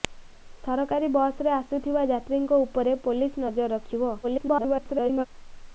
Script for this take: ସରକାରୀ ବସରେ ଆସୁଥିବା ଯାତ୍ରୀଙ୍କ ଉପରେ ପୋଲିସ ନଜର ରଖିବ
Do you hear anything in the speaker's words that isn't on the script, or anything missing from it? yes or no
yes